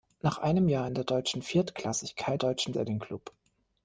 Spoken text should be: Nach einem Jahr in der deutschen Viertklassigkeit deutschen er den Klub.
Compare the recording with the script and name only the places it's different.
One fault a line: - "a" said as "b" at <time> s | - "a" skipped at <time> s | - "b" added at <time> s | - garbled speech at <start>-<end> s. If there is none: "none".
none